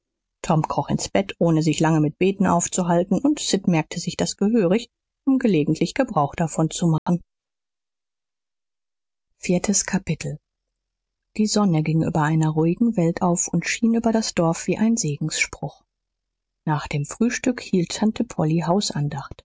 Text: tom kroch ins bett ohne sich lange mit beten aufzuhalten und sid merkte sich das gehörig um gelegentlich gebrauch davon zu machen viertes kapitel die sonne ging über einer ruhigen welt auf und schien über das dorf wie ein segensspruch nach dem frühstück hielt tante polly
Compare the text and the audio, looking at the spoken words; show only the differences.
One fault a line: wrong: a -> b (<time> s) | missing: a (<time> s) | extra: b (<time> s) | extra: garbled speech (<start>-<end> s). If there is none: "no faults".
no faults